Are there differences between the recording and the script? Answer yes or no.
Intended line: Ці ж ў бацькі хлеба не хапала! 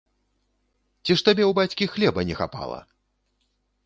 yes